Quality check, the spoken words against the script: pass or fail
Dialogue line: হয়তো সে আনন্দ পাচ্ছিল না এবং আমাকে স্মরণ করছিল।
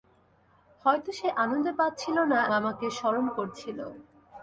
fail